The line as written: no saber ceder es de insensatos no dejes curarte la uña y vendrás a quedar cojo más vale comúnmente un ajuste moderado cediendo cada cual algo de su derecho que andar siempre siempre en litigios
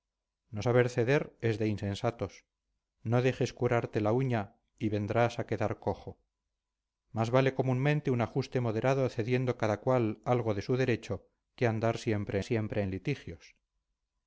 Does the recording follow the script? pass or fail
pass